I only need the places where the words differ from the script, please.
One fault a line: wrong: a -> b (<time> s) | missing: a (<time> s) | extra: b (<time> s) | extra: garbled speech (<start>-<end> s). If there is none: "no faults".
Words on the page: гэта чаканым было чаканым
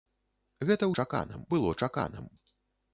no faults